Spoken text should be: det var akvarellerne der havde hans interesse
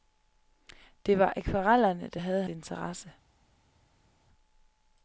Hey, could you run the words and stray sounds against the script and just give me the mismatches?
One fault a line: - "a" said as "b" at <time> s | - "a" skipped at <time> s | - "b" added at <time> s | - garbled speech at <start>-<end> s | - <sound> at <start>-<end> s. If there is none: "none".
- "hans" skipped at 2.4 s